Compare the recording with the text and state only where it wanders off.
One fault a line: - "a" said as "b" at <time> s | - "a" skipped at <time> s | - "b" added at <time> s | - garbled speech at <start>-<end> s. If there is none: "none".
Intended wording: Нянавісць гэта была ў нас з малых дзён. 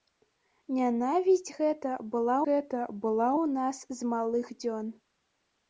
- "гэта была" added at 2.4 s